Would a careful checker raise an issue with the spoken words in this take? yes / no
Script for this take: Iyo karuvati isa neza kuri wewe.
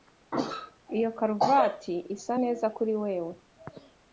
no